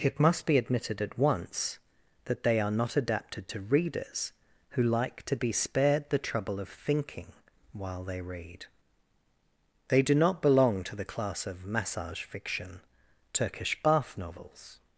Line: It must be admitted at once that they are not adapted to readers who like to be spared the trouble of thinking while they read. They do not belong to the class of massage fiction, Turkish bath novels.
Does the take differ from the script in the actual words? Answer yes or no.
no